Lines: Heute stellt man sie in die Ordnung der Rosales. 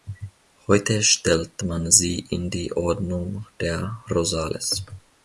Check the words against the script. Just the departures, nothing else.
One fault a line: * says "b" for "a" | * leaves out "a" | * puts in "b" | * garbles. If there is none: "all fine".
all fine